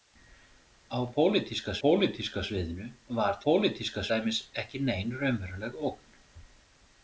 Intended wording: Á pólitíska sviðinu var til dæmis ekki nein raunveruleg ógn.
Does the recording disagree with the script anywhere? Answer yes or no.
yes